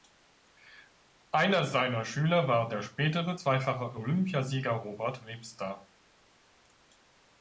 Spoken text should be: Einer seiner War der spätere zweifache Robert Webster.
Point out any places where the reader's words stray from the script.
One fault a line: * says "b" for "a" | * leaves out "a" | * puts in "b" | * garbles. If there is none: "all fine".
* puts in "Schüler"
* puts in "Olympiasieger"